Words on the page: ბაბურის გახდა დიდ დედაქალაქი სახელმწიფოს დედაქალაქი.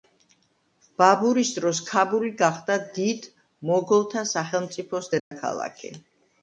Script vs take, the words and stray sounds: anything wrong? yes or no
yes